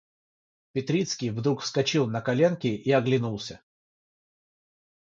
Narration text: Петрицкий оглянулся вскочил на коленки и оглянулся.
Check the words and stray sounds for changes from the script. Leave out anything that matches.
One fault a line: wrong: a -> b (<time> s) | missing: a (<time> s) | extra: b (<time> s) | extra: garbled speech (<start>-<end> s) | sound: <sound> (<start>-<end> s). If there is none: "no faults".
wrong: оглянулся -> вдруг (1.3 s)